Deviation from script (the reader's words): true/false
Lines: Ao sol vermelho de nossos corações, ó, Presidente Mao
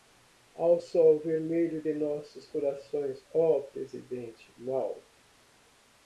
false